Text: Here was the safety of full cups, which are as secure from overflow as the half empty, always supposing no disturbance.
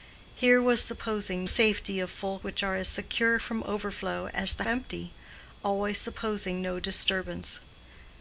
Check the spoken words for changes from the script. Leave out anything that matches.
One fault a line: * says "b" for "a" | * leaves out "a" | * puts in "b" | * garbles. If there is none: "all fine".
* says "supposing" for "the"
* leaves out "cups"
* leaves out "half"